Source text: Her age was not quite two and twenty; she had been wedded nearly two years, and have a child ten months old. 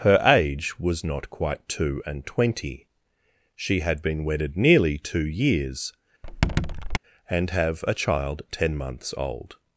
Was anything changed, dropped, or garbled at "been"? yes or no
no